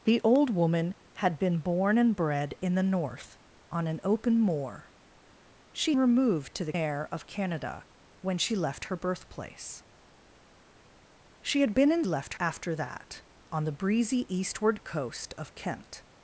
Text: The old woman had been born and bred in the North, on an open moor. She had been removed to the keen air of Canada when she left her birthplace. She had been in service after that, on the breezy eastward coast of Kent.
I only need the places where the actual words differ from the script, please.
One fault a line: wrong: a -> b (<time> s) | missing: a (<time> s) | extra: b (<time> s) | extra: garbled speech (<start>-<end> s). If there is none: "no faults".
missing: had been (6.0 s)
missing: keen (6.7 s)
wrong: service -> left (12.0 s)